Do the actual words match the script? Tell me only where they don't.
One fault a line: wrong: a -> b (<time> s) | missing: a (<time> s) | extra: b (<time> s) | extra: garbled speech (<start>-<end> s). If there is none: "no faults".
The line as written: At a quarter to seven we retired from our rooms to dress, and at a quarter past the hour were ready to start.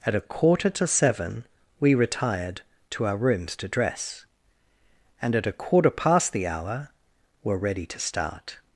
wrong: from -> to (2.9 s)